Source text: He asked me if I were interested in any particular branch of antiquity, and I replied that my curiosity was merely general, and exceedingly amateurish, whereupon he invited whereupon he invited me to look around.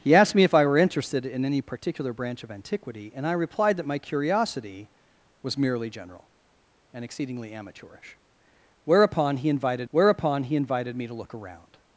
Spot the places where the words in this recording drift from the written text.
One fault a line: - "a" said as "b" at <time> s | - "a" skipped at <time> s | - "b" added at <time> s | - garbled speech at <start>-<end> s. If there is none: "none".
none